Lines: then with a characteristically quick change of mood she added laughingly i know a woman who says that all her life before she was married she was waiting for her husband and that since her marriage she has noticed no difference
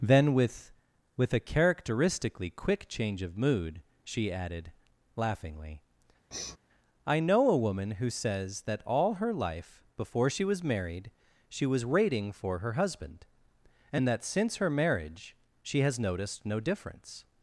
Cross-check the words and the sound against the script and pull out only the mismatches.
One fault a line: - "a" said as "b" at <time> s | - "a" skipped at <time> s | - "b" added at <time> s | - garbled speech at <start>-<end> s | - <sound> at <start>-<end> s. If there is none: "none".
- "with" added at 1.1 s
- sniff at 6.3-6.6 s